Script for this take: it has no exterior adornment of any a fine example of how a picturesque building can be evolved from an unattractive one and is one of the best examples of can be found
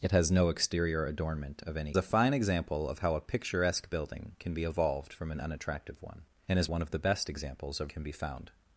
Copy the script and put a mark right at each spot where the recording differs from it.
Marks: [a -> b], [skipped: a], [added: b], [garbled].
it has no exterior adornment of any a fine example of how a picturesque building can be evolved from an unattractive one and is one of the best examples of can be found